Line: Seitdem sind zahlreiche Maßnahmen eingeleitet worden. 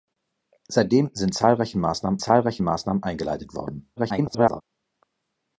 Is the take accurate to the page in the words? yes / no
no